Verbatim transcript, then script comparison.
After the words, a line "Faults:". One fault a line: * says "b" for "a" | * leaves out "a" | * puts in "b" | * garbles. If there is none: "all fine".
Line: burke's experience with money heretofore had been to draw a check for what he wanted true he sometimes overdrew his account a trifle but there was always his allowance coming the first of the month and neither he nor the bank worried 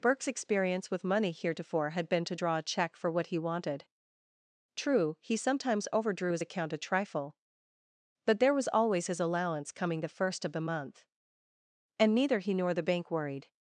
burke's experience with money heretofore had been to draw a check for what he wanted true he sometimes overdrew his account a trifle but there was always his allowance coming the first of the month and neither he nor the bank worried
Faults:
all fine